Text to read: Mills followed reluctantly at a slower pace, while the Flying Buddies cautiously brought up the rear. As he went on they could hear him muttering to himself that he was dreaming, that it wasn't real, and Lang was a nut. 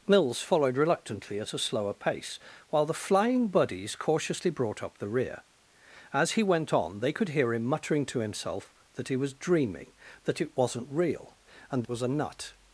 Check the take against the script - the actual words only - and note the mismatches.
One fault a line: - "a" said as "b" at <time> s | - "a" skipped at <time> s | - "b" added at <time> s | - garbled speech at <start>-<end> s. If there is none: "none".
- "Lang" skipped at 11.9 s